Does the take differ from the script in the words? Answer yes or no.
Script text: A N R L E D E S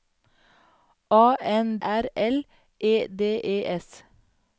no